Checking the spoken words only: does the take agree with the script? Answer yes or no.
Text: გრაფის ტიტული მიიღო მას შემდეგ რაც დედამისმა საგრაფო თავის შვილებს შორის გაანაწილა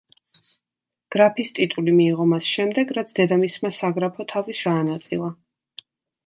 no